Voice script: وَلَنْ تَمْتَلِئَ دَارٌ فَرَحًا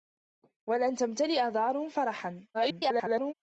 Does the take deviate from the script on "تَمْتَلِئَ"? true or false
false